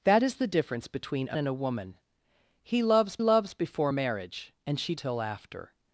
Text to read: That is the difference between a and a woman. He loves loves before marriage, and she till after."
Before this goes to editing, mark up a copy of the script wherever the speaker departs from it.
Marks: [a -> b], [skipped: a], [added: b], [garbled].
That is the difference between a and a woman. He loves loves before marriage, and she till after."